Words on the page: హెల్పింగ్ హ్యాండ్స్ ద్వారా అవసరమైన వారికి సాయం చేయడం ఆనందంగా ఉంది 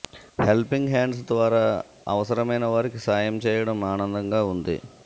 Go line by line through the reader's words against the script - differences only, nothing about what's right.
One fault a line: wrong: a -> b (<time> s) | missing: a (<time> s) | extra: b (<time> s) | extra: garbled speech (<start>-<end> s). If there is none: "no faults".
no faults